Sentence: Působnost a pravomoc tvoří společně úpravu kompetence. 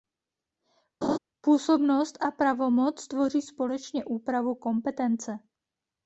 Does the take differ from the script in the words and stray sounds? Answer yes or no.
yes